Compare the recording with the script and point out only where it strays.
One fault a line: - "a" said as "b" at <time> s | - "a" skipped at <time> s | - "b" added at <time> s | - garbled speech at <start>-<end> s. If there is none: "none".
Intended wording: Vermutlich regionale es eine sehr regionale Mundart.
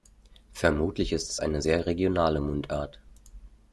- "regionale" said as "ist" at 1.1 s